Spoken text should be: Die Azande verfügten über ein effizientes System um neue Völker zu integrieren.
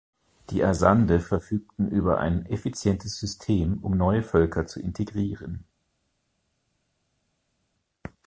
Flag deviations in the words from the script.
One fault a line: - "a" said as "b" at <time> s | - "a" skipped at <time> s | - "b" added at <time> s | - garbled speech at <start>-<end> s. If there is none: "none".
none